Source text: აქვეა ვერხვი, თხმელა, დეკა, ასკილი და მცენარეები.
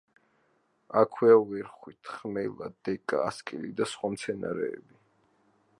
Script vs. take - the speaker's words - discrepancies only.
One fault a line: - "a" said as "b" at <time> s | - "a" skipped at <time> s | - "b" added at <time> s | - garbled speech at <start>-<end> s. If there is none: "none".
- "სხვა" added at 4.0 s